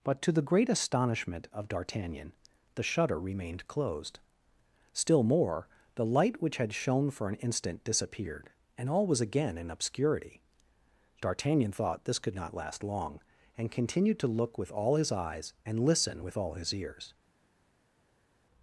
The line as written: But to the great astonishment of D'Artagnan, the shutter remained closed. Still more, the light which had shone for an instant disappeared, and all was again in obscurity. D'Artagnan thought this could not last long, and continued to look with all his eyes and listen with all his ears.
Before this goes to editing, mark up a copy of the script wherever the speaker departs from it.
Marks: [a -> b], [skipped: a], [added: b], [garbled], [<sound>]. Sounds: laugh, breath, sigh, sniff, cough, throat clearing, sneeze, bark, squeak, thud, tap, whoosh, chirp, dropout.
But to the great astonishment of D'Artagnan, the shutter remained closed. Still more, the light which had shone for an instant disappeared, and all was again in obscurity. D'Artagnan thought this could not last long, and continued to look with all his eyes and listen with all his ears.